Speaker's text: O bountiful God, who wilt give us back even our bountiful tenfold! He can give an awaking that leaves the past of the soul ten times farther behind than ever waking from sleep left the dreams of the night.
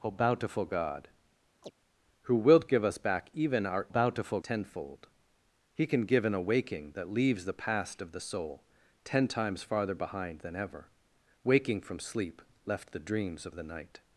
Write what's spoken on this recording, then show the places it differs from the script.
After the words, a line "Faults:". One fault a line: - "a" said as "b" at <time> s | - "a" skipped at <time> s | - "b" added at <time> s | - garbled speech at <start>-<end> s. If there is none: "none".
O bountiful God, who wilt give us back even our bountiful tenfold! He can give an awaking that leaves the past of the soul ten times farther behind than ever waking from sleep left the dreams of the night.
Faults:
none